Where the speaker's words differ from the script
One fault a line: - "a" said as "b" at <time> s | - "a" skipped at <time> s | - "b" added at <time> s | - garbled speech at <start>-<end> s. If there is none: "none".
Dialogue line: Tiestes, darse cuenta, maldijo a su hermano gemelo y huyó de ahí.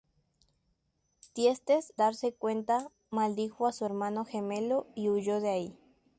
none